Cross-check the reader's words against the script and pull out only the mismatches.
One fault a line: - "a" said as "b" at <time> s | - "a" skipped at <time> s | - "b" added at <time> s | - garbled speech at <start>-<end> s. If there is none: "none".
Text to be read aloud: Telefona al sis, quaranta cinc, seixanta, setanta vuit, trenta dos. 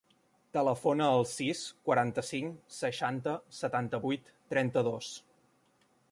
none